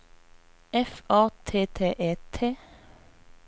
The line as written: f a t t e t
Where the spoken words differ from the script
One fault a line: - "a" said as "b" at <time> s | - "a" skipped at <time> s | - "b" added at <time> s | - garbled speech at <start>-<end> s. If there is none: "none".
none